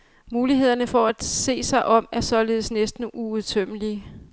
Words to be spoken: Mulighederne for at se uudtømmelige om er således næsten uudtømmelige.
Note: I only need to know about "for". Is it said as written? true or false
true